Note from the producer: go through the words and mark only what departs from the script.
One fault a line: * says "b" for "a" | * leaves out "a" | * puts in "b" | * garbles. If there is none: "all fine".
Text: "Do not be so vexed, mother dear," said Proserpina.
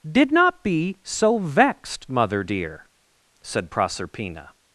* says "Did" for "Do"